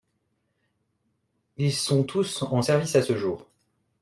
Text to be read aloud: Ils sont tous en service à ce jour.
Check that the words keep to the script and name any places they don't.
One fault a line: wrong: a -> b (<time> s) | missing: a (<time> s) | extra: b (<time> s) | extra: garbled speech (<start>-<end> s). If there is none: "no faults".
no faults